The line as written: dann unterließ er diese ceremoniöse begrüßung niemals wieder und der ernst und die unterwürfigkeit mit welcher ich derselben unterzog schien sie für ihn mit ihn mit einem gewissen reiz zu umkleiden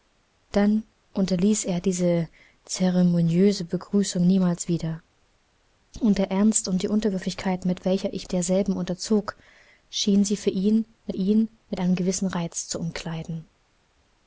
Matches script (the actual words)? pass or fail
pass